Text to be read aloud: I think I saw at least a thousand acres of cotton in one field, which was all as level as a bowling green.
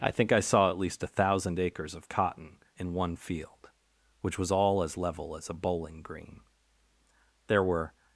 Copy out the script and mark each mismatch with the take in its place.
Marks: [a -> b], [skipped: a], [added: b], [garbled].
I think I saw at least a thousand acres of cotton in one field, which was all as level as a bowling green. [added: There were]